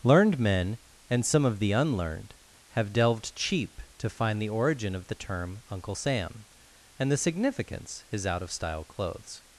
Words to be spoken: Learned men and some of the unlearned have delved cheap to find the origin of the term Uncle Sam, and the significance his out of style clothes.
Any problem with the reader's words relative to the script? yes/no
no